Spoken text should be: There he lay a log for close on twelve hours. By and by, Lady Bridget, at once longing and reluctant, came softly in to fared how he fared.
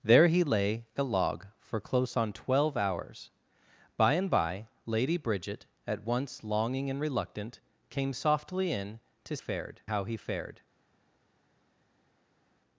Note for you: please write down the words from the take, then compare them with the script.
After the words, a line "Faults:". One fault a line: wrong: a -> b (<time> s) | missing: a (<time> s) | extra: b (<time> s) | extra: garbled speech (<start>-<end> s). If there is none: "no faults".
There he lay a log for close on twelve hours. By and by, Lady Bridget, at once longing and reluctant, came softly in to fared how he fared.
Faults:
no faults